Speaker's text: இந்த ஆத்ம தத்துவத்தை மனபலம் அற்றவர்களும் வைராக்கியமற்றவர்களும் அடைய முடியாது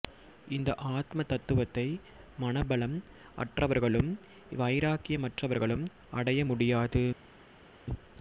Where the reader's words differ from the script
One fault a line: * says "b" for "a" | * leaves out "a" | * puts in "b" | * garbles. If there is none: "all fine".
all fine